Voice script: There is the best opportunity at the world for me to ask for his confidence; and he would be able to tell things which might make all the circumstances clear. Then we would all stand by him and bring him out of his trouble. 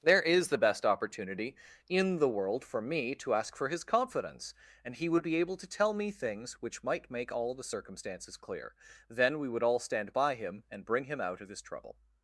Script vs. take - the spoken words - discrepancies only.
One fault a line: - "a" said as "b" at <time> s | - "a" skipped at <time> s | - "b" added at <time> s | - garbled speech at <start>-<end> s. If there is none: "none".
- "at" said as "in" at 1.9 s
- "me" added at 5.9 s